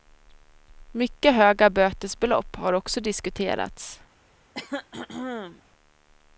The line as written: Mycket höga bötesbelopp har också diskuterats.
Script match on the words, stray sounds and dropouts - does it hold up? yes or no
no